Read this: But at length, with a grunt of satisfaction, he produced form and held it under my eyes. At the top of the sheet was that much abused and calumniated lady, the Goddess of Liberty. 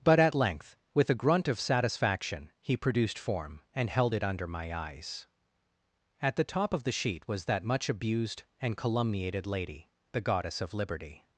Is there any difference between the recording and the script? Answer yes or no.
no